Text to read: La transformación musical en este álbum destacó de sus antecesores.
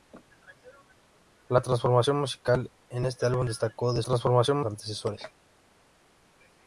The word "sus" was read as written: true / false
false